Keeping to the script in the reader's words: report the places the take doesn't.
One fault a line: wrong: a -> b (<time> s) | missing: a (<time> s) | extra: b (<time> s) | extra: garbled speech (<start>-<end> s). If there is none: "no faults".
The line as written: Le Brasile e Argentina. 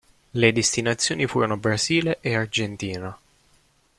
extra: destinazioni furono (0.5 s)